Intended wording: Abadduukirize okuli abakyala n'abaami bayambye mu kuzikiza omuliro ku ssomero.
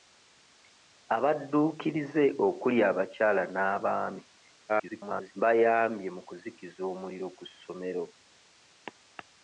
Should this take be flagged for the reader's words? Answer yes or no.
yes